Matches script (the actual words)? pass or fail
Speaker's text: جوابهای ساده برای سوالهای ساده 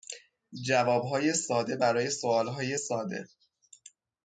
pass